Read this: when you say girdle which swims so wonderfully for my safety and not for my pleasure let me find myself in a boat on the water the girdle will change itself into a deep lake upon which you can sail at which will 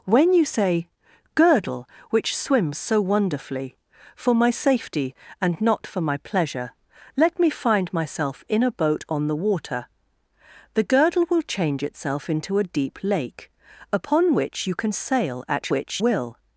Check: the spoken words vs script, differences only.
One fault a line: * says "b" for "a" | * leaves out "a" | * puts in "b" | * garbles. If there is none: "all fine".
all fine